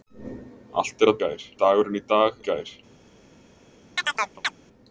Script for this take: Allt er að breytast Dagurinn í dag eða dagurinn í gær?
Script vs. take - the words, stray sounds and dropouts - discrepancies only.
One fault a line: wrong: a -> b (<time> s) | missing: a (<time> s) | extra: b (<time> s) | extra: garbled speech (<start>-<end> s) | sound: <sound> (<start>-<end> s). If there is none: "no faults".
wrong: breytast -> gær (1.2 s)
missing: eða dagurinn (2.4 s)
sound: chirp (4.0-4.5 s)